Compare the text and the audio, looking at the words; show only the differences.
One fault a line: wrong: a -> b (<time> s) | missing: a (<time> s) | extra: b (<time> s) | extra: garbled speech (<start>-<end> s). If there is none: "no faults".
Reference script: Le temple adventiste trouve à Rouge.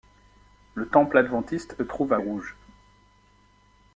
no faults